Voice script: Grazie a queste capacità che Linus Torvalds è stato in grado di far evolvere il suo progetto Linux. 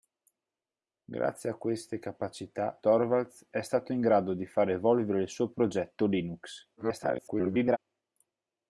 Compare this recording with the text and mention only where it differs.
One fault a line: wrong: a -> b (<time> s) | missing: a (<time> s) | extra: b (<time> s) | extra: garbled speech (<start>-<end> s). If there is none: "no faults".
missing: che Linus (2.8 s)
extra: garbled speech (6.8-7.8 s)